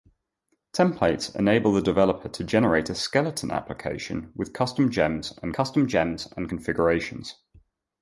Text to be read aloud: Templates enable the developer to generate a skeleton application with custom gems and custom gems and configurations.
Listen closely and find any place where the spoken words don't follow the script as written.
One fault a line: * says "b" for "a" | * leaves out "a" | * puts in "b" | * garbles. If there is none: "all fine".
all fine